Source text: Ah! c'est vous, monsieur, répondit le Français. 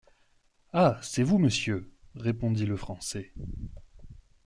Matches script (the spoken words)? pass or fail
pass